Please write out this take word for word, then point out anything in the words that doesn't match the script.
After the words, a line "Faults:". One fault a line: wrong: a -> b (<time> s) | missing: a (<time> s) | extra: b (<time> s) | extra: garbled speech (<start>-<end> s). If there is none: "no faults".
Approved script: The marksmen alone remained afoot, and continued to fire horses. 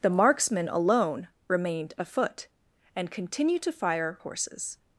The marksmen alone remained afoot, and continued to fire horses.
Faults:
no faults